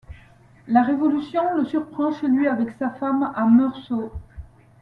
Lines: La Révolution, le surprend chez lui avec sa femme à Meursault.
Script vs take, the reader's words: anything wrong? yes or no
no